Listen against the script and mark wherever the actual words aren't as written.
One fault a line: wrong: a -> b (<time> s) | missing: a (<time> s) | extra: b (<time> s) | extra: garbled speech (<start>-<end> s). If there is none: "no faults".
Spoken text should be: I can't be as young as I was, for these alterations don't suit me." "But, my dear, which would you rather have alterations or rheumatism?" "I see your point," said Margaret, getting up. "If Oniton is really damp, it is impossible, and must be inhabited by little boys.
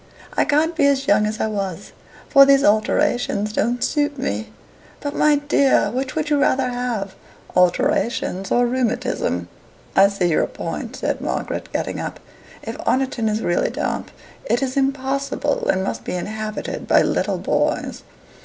no faults